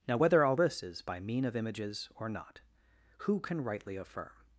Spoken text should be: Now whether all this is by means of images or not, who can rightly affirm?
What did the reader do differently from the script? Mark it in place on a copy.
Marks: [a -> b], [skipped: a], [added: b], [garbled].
Now whether all this is by [means -> mean] of images or not, who can rightly affirm?